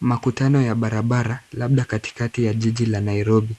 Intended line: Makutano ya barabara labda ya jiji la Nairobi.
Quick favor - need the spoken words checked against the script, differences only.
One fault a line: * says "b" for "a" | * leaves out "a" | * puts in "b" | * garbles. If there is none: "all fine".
* puts in "katikati"